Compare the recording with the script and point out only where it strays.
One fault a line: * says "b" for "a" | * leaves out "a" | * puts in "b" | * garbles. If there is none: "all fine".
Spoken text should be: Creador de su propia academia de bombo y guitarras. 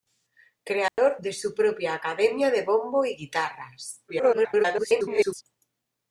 * garbles